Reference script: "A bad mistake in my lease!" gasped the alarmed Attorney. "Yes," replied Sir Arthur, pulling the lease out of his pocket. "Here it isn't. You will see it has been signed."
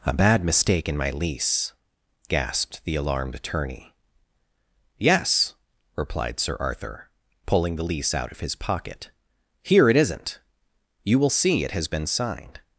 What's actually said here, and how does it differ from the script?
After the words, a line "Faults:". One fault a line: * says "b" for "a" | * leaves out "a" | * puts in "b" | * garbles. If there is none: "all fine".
"A bad mistake in my lease!" gasped the alarmed Attorney. "Yes," replied Sir Arthur, pulling the lease out of his pocket. "Here it isn't. You will see it has been signed."
Faults:
all fine